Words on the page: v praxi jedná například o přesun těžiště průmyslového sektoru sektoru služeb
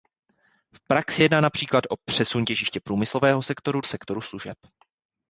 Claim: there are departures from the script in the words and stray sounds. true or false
false